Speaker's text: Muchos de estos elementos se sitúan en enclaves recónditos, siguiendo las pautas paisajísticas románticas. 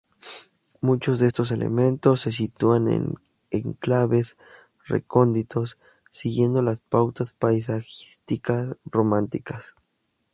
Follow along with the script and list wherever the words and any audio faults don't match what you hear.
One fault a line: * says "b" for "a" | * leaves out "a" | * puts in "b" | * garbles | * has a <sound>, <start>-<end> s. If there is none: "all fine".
all fine